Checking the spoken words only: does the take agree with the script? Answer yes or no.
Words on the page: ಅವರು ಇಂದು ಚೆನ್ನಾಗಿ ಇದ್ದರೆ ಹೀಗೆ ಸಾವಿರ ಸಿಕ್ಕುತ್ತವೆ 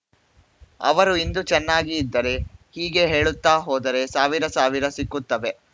no